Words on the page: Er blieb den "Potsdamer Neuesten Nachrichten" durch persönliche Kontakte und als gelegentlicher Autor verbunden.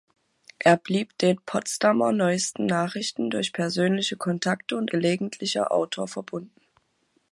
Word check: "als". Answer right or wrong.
wrong